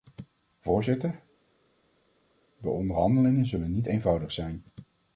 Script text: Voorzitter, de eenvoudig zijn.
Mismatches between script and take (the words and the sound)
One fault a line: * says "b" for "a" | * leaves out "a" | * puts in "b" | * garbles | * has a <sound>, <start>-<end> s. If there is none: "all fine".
* puts in "onderhandelingen zullen niet"